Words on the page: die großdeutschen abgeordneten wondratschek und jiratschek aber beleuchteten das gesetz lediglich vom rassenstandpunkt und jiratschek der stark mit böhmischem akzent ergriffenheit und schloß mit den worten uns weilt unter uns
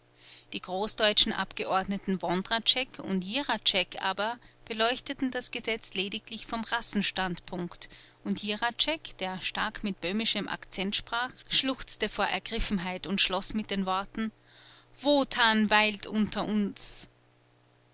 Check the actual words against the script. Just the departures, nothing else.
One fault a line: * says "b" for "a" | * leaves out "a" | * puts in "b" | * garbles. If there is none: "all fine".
* puts in "sprach schluchzte vor"
* says "wotan" for "uns"